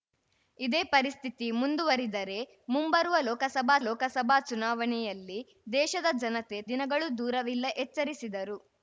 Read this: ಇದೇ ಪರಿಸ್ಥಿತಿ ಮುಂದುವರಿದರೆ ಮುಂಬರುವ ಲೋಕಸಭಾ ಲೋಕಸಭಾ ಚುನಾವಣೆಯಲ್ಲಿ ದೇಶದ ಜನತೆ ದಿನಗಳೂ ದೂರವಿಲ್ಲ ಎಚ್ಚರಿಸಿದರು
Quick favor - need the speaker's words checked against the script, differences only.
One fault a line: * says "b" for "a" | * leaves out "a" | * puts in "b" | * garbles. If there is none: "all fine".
all fine